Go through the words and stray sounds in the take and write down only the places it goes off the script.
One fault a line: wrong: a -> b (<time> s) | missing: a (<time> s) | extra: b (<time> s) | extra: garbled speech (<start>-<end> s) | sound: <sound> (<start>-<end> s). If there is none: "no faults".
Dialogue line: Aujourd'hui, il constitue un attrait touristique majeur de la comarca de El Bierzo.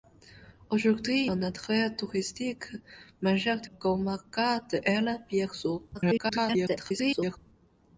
missing: il constitue (1.3 s)
missing: la (3.7 s)
extra: garbled speech (5.9-7.4 s)